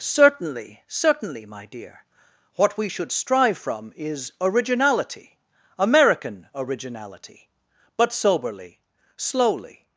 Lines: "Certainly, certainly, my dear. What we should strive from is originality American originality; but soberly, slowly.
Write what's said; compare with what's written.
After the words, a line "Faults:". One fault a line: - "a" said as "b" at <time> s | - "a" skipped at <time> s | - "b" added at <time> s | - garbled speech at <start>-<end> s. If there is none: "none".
"Certainly, certainly, my dear. What we should strive from is originality American originality; but soberly, slowly.
Faults:
none